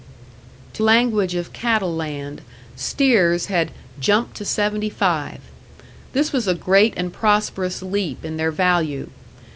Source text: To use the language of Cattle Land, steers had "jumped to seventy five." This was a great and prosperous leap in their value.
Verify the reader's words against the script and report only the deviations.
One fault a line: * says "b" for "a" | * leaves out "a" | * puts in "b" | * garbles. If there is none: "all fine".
* leaves out "use the"